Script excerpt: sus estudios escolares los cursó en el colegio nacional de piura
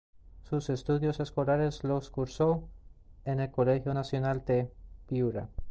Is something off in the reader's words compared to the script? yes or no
no